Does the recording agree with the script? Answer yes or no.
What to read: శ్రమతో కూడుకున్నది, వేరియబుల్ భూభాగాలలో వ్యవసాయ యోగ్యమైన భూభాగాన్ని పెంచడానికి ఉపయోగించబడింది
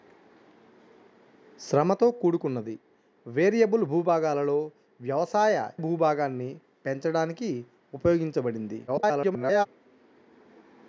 no